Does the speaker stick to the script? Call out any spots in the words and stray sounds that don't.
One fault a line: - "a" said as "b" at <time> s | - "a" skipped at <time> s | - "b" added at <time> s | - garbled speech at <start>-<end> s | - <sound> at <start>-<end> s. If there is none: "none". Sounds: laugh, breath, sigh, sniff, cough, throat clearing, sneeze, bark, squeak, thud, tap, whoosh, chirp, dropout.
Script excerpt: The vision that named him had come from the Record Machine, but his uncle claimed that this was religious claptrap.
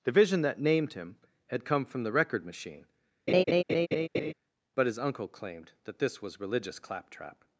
- laugh at 3.3-4.3 s